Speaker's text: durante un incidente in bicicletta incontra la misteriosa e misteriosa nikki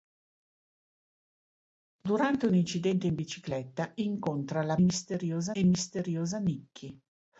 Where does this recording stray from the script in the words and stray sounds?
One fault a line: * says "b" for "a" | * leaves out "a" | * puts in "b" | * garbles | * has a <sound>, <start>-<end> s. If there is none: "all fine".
all fine